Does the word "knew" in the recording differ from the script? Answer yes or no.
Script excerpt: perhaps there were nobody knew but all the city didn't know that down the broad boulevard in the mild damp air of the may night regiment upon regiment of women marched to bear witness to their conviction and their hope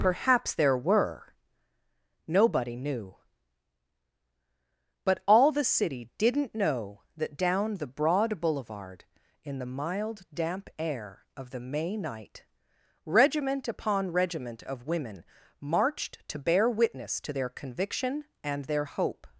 no